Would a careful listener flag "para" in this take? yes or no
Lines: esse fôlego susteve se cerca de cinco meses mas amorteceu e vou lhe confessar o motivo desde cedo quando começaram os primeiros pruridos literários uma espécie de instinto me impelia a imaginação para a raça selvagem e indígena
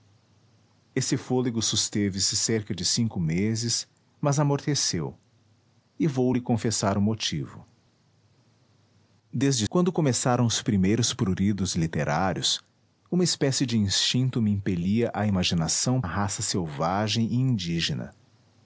yes